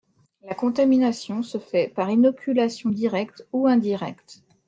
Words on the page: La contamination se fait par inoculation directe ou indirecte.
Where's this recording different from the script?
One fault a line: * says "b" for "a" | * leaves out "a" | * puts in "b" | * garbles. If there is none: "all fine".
all fine